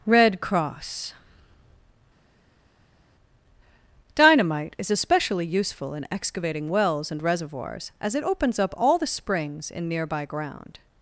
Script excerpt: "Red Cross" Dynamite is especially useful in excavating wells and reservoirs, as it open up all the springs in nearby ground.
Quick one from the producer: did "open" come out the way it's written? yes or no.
no